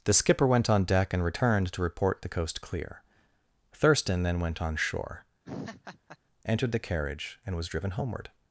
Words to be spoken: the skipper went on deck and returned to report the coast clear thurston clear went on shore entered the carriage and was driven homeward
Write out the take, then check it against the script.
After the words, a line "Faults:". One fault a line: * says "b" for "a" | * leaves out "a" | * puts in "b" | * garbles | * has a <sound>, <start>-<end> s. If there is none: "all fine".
the skipper went on deck and returned to report the coast clear thurston then went on shore entered the carriage and was driven homeward
Faults:
* says "then" for "clear"
* has a laugh, 5.5-6.2 s